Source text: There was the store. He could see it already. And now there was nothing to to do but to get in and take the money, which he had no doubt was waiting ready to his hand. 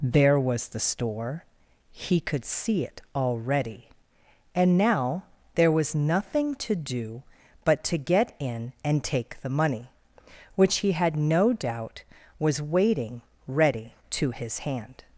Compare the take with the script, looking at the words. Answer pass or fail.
fail